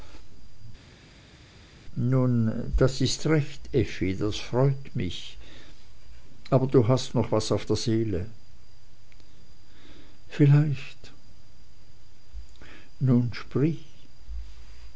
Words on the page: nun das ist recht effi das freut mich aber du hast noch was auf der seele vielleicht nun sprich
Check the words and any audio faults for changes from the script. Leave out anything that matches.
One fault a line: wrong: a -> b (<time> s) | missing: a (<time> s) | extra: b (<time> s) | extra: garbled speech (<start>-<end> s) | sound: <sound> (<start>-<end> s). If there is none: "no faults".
no faults